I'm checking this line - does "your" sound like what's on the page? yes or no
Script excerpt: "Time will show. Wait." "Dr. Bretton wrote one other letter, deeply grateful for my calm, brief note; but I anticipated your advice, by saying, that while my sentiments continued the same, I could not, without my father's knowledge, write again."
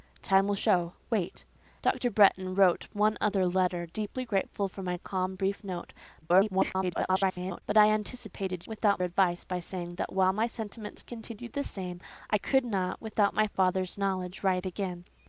no